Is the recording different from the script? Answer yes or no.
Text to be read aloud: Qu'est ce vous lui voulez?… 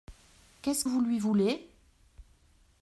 no